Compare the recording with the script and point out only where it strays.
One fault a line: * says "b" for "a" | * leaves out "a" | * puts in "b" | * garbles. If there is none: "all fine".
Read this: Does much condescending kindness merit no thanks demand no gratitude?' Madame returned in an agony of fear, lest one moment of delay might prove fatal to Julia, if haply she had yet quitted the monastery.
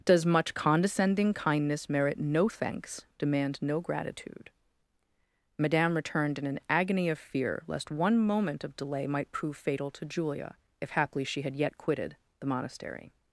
all fine